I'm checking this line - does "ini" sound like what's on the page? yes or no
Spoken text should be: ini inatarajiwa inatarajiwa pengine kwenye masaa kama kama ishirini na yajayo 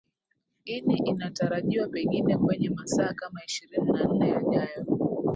yes